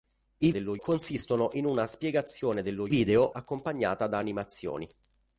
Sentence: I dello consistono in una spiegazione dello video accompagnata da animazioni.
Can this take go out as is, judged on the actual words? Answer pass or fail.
pass